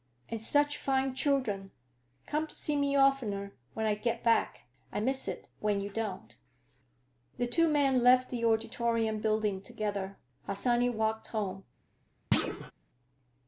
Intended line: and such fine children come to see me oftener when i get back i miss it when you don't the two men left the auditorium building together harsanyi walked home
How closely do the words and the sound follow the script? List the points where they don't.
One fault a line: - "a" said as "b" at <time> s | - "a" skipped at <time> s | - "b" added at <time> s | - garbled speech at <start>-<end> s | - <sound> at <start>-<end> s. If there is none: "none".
- thud at 12.3-12.7 s